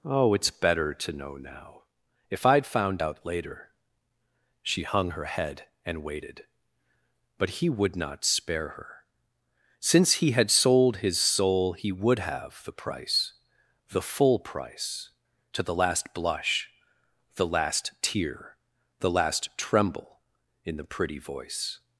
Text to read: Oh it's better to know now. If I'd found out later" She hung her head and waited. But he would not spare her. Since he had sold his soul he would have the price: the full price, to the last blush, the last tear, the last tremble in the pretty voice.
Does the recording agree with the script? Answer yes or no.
yes